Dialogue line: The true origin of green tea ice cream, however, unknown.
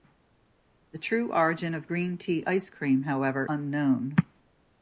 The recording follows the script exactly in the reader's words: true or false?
true